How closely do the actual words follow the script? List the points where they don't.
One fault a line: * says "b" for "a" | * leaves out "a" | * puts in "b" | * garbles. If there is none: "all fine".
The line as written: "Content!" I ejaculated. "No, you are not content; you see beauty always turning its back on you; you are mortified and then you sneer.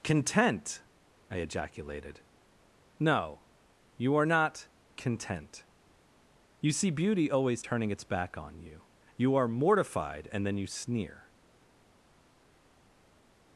all fine